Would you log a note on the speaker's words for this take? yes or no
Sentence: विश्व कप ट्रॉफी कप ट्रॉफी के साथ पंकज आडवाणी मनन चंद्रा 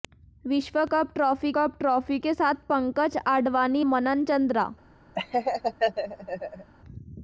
no